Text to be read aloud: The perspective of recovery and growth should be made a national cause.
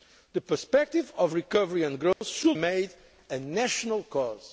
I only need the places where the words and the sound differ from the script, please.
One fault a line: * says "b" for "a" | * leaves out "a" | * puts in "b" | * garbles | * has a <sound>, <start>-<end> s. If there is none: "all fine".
* has a dropout, 2.1-2.2 s
* leaves out "be"